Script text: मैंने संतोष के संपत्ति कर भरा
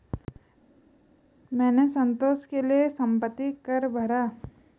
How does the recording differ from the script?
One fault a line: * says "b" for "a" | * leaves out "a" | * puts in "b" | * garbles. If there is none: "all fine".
* puts in "लिए"